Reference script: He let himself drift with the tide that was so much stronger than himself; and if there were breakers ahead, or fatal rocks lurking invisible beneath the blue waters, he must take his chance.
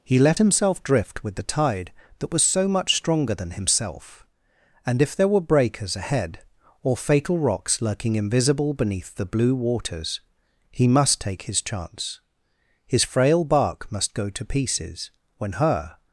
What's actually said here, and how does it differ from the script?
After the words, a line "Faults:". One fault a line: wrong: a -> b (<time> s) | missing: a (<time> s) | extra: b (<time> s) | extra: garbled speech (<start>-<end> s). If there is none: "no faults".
He let himself drift with the tide that was so much stronger than himself; and if there were breakers ahead, or fatal rocks lurking invisible beneath the blue waters, he must take his chance. His frail bark must go to pieces when her
Faults:
extra: His frail bark must go to pieces when her (12.9 s)